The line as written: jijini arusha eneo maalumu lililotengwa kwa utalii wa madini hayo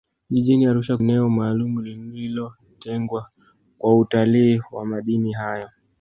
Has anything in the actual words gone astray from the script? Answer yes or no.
no